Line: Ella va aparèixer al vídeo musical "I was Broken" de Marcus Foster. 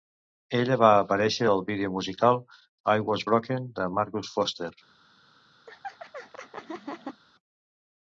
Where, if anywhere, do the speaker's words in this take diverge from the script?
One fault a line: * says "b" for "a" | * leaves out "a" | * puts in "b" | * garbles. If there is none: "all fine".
all fine